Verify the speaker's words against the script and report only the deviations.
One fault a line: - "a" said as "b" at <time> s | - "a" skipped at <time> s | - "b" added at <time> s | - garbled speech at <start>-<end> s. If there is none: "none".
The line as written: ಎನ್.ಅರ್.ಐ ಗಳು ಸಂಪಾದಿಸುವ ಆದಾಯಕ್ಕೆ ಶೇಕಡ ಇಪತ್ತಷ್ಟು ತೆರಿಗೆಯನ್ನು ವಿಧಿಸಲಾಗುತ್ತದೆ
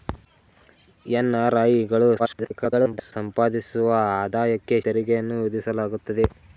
- garbled speech at 2.2-3.1 s
- "ಶೇಕಡ ಇಪತ್ತಷ್ಟು" skipped at 4.8 s